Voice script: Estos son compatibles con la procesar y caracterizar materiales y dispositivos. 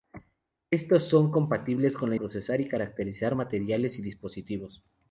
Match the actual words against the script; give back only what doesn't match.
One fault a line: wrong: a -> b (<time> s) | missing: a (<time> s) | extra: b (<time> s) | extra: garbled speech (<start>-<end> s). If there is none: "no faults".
no faults